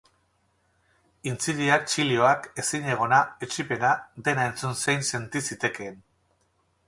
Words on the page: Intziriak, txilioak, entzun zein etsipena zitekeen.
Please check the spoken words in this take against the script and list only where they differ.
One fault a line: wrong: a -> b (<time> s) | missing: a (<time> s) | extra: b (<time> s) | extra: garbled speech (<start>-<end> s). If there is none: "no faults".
extra: ezinegona etsipena dena (2.6 s)
wrong: etsipena -> senti (5.1 s)